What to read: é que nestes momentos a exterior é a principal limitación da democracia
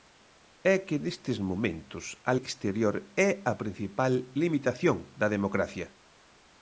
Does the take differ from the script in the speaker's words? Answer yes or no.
no